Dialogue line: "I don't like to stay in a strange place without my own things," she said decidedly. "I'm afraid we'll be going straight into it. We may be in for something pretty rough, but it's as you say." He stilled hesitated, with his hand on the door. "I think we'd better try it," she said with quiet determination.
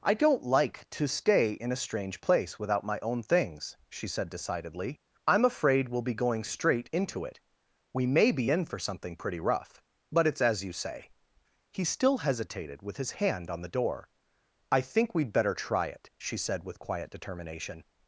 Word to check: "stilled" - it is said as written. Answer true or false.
false